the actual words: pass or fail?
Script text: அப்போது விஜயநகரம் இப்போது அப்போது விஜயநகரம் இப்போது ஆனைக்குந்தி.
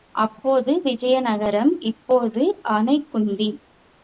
fail